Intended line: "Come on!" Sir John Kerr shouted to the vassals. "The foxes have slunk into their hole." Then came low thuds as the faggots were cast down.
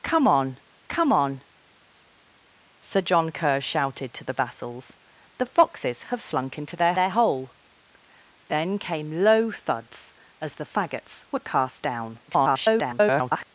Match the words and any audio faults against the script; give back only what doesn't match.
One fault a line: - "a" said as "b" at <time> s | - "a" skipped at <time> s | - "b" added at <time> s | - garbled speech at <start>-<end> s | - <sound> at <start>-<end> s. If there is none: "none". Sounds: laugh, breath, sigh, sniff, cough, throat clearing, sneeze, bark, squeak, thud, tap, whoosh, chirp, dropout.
- "come on" added at 0.9 s
- "their" added at 6.9 s
- garbled speech at 12.3-13.4 s